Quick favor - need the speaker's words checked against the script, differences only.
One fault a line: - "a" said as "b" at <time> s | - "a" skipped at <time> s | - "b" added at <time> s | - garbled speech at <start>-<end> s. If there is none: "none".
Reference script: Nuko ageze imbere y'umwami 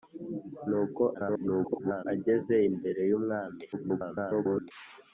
- garbled speech at 1.1-2.1 s
- garbled speech at 3.7-4.7 s